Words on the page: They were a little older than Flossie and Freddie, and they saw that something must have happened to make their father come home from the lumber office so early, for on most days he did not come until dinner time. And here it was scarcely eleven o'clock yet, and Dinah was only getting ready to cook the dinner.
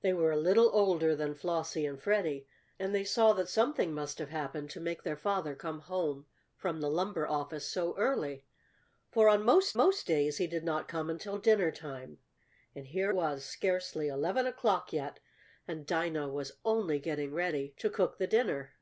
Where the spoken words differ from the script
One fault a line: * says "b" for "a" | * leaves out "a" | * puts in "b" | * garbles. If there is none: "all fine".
* puts in "most"
* leaves out "it"